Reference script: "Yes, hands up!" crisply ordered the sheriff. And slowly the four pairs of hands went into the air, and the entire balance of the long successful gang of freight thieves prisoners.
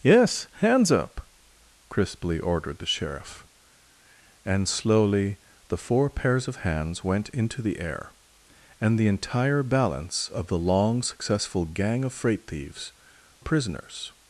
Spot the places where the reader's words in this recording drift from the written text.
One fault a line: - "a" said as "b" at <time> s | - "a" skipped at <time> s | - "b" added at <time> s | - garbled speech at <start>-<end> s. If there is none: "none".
none